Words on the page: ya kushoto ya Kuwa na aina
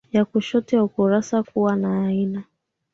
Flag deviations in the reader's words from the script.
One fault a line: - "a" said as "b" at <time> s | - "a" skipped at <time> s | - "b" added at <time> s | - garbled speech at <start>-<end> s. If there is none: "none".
- "ukurasa" added at 0.8 s